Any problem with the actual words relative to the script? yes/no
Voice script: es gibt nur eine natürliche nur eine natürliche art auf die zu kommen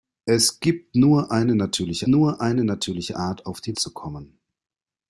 no